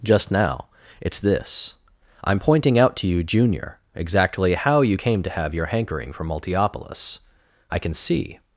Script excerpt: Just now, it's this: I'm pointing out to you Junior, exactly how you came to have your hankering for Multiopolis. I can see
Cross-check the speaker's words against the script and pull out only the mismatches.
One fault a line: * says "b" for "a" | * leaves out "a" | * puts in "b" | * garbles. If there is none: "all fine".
all fine